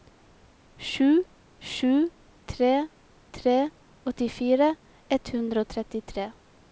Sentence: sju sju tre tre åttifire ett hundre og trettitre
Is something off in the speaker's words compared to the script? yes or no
no